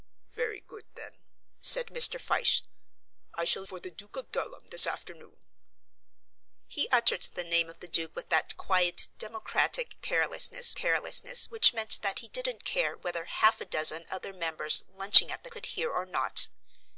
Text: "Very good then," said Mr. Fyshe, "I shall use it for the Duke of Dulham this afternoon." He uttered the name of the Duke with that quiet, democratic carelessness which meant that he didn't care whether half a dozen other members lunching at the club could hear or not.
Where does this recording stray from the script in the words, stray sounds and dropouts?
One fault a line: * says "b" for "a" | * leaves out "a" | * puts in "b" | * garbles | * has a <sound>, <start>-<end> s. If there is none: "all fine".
* leaves out "use it"
* puts in "carelessness"
* leaves out "club"